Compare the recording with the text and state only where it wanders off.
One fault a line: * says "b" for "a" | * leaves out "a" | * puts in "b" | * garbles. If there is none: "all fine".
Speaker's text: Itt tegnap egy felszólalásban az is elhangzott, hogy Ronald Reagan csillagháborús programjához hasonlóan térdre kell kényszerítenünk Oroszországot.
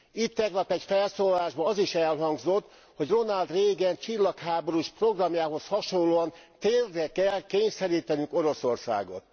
all fine